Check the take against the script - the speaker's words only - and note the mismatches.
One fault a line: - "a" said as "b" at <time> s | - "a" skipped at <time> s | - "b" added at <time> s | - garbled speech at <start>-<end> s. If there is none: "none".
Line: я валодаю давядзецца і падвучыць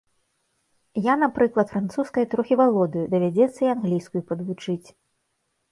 - "напрыклад французскай трохі" added at 1.2 s
- "англійскую" added at 3.8 s